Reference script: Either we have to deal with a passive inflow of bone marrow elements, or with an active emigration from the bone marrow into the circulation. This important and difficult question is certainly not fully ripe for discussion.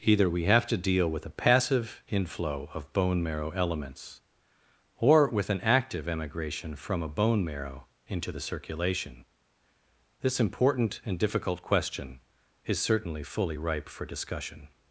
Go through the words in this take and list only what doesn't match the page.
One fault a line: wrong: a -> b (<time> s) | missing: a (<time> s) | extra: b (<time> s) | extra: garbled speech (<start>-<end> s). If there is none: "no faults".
wrong: the -> a (7.0 s)
missing: not (13.2 s)